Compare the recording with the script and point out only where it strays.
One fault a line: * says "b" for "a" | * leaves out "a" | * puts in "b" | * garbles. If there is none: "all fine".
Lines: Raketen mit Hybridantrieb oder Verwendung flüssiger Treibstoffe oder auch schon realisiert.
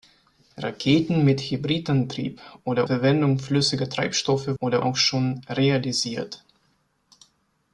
all fine